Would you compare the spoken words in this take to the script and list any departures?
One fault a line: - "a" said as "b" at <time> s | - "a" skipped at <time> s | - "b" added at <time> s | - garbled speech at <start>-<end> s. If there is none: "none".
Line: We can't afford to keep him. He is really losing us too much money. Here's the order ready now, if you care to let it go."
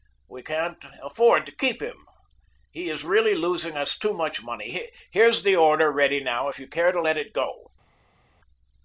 none